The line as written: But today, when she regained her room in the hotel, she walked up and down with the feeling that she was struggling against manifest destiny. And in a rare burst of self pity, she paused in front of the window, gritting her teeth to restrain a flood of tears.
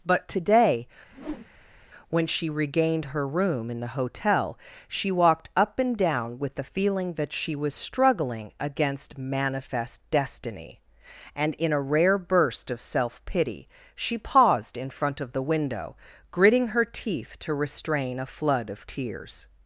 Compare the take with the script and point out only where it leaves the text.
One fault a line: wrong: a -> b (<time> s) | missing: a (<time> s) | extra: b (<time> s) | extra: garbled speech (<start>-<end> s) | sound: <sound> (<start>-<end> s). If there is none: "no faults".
sound: whoosh (1.1-1.9 s)